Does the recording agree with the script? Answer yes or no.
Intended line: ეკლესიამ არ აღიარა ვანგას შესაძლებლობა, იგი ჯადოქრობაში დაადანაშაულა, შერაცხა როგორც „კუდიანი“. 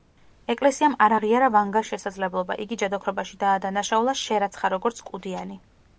yes